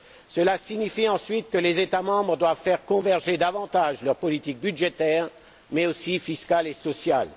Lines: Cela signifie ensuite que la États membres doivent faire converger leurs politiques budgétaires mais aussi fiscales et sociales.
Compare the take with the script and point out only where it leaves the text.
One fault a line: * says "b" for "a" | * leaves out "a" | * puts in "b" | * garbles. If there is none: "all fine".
* says "les" for "la"
* puts in "davantage"